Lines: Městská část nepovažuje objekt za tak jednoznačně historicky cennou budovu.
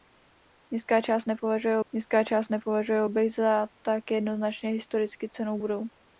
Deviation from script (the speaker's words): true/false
true